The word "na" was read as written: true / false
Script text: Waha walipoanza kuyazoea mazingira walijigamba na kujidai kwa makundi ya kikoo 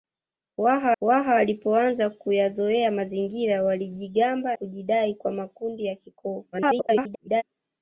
false